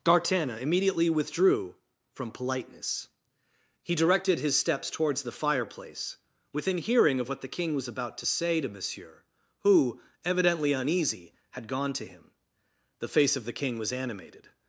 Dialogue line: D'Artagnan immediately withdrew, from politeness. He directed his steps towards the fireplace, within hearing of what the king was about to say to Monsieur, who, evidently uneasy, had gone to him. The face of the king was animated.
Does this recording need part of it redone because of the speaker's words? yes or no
no